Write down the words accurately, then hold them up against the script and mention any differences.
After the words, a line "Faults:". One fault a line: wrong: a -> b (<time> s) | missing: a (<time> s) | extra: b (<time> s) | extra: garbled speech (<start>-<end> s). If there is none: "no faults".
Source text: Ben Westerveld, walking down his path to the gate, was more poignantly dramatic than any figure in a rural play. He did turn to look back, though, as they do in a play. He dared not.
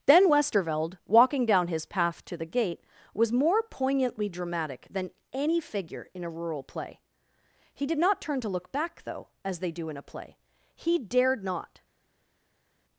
Ben Westerveld, walking down his path to the gate, was more poignantly dramatic than any figure in a rural play. He did not turn to look back, though, as they do in a play. He dared not.
Faults:
extra: not (8.0 s)